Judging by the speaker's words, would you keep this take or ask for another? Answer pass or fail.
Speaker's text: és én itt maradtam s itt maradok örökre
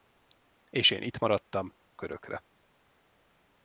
fail